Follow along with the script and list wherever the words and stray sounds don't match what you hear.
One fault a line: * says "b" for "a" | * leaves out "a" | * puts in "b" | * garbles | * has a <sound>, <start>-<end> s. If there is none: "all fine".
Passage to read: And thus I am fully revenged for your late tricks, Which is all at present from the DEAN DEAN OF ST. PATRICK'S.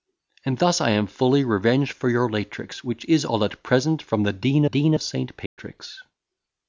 * has a dropout, 5.5-5.6 s